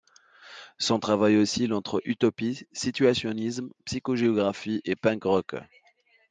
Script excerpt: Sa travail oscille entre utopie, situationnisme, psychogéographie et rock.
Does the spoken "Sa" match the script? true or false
false